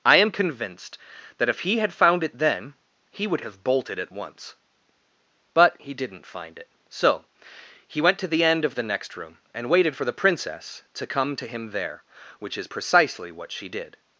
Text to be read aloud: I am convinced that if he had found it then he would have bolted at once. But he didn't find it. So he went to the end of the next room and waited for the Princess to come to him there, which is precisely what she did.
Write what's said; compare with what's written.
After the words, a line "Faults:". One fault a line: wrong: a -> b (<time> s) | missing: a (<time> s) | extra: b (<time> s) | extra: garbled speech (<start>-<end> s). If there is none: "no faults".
I am convinced that if he had found it then he would have bolted at once. But he didn't find it. So he went to the end of the next room and waited for the Princess to come to him there, which is precisely what she did.
Faults:
no faults